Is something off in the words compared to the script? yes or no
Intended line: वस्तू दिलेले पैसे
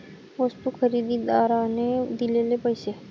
yes